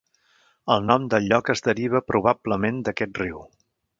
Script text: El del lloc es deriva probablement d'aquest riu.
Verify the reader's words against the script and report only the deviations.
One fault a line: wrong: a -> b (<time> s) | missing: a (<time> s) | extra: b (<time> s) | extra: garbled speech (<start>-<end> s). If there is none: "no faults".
extra: nom (0.9 s)